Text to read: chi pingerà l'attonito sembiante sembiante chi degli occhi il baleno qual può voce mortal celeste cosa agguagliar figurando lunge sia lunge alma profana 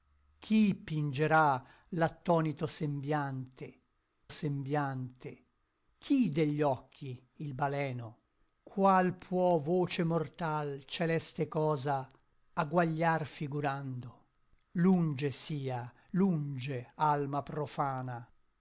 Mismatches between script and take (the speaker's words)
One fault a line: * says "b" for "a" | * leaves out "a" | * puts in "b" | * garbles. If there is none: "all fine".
all fine